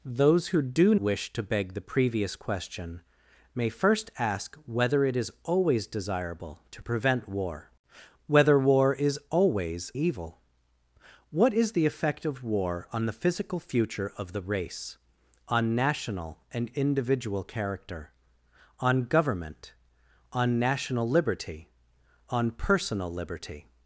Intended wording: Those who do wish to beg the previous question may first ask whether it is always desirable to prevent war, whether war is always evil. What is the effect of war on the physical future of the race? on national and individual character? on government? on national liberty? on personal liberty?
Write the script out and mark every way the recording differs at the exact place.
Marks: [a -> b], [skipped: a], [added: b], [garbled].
Those who do wish to beg the previous question may first ask whether it is always desirable to prevent war, whether war is always evil. What is the effect of war on the physical future of the race? on national and individual character? on government? on national liberty? on personal liberty?